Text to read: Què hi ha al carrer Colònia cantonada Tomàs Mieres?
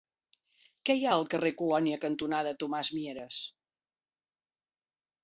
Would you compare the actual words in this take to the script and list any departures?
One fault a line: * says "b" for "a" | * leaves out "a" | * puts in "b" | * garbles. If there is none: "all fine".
all fine